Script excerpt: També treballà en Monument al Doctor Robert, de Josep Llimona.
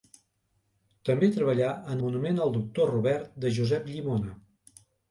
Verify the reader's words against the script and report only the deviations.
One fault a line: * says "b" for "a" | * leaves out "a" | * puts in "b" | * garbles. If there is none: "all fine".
all fine